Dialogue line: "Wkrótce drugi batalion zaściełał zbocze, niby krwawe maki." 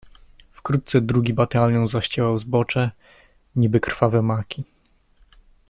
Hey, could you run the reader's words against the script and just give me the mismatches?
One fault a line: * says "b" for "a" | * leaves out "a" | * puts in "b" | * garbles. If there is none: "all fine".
all fine